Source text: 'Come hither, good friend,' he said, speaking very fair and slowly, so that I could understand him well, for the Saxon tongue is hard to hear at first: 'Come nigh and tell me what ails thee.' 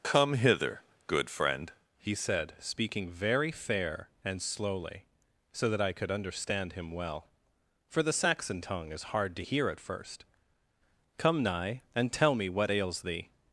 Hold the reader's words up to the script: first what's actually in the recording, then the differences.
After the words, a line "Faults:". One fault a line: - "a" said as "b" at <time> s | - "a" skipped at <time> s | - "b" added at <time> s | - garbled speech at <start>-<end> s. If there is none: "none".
'Come hither, good friend,' he said, speaking very fair and slowly, so that I could understand him well, for the Saxon tongue is hard to hear at first: 'Come nigh and tell me what ails thee.'
Faults:
none